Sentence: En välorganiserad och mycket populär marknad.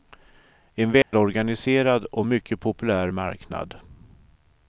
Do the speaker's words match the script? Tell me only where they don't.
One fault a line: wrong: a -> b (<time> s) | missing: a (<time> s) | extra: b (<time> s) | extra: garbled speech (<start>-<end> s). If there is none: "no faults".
no faults